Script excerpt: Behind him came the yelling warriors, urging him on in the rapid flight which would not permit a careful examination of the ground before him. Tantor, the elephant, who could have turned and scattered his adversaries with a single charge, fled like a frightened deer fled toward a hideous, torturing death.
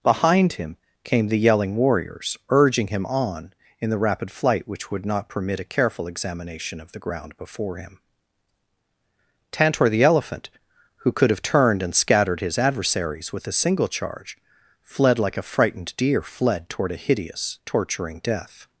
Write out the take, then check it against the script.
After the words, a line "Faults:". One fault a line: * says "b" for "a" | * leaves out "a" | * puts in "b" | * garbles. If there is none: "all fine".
Behind him came the yelling warriors, urging him on in the rapid flight which would not permit a careful examination of the ground before him. Tantor, the elephant, who could have turned and scattered his adversaries with a single charge, fled like a frightened deer fled toward a hideous, torturing death.
Faults:
all fine